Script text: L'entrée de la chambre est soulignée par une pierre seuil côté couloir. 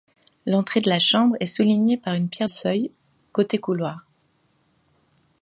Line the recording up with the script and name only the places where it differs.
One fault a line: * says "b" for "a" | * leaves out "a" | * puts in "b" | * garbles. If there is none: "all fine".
all fine